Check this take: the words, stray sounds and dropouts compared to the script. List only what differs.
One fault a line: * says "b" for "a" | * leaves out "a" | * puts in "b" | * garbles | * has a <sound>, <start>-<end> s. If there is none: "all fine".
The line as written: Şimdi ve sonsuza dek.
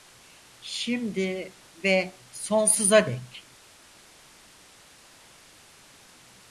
all fine